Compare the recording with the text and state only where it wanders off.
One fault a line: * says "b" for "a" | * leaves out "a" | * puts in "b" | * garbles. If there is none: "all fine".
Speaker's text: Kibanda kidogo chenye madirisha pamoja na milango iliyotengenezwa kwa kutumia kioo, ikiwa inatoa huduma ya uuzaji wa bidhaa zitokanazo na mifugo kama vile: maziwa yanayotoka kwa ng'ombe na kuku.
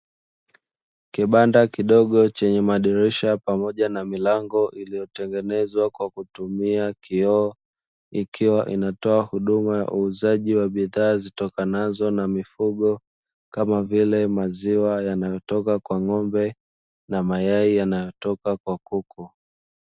* puts in "mayai yanayotoka kwa"